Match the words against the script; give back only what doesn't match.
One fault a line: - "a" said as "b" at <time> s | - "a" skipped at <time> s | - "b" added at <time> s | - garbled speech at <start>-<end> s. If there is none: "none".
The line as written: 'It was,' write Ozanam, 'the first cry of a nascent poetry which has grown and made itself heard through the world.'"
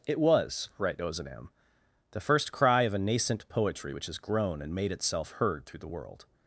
none